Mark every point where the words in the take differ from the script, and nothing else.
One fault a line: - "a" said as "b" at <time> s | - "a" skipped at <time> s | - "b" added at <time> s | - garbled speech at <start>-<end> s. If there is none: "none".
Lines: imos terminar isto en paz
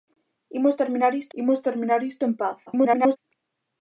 - "imos terminar isto" added at 1.4 s
- garbled speech at 2.7-3.2 s